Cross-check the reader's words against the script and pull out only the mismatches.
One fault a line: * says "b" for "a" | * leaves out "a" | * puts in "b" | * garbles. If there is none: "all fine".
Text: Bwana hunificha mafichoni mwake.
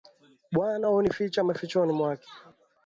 all fine